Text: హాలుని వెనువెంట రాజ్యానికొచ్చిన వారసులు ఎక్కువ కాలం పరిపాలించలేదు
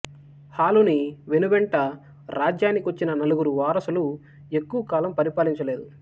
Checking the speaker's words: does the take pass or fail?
fail